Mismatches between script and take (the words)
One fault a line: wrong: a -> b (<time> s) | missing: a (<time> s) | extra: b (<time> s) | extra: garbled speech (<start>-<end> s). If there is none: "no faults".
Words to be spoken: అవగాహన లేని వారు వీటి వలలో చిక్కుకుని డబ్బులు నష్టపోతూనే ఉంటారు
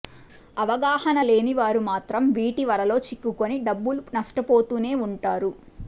extra: మాత్రం (1.9 s)